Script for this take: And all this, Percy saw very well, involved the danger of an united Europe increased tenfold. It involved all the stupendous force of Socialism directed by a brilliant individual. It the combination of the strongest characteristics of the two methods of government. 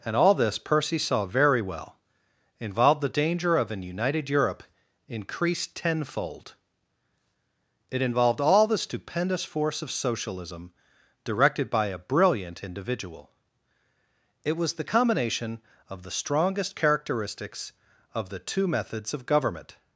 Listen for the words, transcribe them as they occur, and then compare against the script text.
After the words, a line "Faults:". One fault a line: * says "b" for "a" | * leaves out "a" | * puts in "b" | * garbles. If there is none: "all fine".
And all this, Percy saw very well, involved the danger of an united Europe increased tenfold. It involved all the stupendous force of Socialism directed by a brilliant individual. It was the combination of the strongest characteristics of the two methods of government.
Faults:
* puts in "was"